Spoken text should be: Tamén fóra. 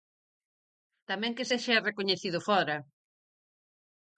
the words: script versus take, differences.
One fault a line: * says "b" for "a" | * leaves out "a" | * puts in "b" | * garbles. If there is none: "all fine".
* puts in "que sexa recoñecido"